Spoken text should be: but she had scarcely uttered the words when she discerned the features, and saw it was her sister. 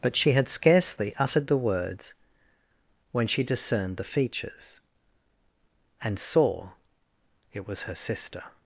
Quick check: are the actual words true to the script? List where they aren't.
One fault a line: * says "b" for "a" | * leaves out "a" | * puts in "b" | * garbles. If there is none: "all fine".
all fine